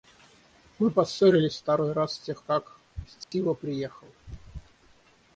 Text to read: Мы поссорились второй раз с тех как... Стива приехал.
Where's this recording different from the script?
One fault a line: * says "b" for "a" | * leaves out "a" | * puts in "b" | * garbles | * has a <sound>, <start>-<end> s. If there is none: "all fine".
* has a dropout, 3.2-3.3 s